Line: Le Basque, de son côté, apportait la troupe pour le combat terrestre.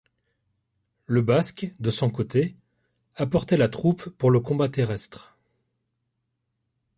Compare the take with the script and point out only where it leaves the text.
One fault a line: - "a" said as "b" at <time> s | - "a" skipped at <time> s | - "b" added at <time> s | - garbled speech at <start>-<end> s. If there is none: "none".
none